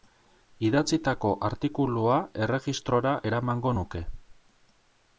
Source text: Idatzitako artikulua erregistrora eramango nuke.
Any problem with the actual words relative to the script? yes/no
no